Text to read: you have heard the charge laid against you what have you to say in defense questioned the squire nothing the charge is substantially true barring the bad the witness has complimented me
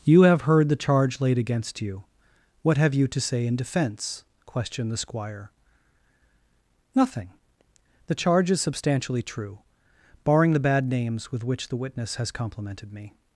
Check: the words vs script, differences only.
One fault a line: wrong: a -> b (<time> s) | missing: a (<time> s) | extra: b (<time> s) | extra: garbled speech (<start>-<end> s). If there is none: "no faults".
extra: names with which (10.9 s)